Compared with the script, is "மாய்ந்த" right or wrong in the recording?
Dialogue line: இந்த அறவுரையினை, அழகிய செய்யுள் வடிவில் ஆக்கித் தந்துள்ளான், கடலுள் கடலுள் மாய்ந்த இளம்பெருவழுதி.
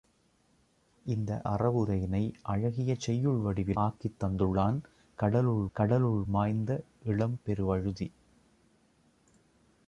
right